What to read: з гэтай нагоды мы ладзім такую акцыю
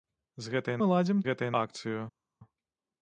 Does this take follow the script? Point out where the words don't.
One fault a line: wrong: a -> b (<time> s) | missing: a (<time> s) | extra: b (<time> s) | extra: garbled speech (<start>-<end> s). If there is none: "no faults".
missing: нагоды (0.8 s)
wrong: такую -> гэтай (1.3 s)